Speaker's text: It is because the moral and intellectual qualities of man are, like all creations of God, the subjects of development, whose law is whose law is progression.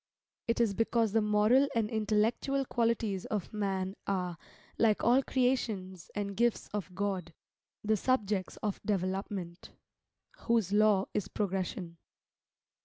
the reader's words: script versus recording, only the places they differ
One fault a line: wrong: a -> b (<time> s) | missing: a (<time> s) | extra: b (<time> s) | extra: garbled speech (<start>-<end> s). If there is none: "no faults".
extra: and gifts (6.1 s)
missing: whose law is (11.3 s)